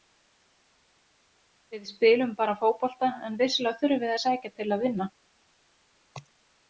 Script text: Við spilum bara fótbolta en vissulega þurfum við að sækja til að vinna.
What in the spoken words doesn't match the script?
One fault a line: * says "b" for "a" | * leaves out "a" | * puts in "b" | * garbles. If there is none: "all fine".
all fine